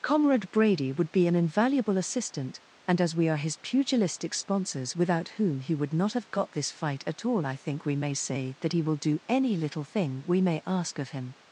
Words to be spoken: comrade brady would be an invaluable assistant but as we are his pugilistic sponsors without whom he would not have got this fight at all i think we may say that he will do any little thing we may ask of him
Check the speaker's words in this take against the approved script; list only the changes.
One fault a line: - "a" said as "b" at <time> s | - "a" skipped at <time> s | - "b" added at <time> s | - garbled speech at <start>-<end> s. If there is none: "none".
- "but" said as "and" at 2.9 s